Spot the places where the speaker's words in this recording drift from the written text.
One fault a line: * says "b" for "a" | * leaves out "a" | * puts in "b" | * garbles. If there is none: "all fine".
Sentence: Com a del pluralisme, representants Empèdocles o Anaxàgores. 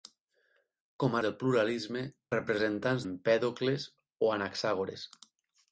all fine